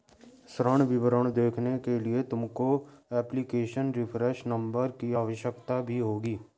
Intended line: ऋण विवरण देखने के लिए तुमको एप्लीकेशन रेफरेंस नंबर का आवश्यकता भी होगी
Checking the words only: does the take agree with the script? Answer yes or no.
no